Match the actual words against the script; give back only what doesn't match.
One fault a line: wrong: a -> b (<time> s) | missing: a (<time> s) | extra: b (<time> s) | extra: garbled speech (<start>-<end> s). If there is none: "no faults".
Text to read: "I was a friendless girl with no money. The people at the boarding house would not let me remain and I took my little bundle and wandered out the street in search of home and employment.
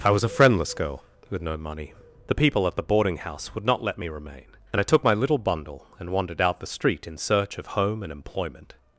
no faults